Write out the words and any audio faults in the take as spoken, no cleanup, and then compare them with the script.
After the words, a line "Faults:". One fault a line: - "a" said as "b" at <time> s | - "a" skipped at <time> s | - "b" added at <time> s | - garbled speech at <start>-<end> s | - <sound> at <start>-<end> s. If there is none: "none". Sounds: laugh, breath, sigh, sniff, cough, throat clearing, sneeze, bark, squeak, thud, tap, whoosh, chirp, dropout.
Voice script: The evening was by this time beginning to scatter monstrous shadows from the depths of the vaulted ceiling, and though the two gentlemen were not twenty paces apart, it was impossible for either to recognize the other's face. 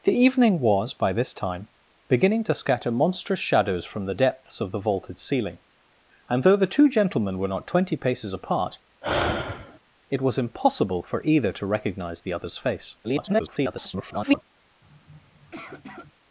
The evening was by this time beginning to scatter monstrous shadows from the depths of the vaulted ceiling, and though the two gentlemen were not twenty paces apart, it was impossible for either to recognize the other's face. [garbled]
Faults:
- sigh at 9.0-9.8 s
- garbled speech at 13.0-14.4 s
- sniff at 14.8-16.1 s